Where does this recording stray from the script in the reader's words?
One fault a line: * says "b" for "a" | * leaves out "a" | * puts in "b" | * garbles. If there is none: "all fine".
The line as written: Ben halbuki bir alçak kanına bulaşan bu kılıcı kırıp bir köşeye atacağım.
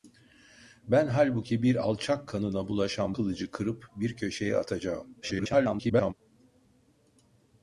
* leaves out "bu"
* garbles